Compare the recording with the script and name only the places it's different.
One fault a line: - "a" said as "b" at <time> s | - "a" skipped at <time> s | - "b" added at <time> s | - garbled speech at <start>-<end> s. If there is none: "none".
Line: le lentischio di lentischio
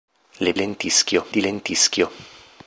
none